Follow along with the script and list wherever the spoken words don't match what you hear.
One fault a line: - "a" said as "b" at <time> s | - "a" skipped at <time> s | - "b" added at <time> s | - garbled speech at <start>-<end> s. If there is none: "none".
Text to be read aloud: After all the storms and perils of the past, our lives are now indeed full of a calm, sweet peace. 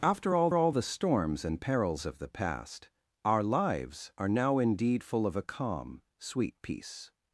- "all" added at 0.5 s